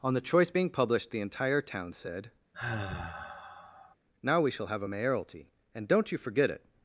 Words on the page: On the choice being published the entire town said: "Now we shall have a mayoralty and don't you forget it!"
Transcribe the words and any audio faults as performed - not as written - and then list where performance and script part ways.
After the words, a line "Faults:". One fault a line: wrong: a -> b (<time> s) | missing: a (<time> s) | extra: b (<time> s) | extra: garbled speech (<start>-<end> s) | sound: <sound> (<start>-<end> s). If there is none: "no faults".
On the choice being published the entire town said: "Now we shall have a mayoralty and don't you forget it!"
Faults:
sound: sigh (2.5-4.0 s)